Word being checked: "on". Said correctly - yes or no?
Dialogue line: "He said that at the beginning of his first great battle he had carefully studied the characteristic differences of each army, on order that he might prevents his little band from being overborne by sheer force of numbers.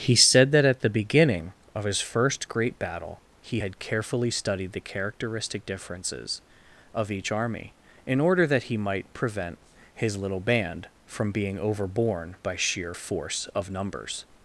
no